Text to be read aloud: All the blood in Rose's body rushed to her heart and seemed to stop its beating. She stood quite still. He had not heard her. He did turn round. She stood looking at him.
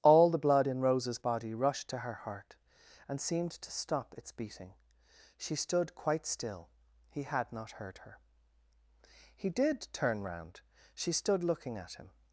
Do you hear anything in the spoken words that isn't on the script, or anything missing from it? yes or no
no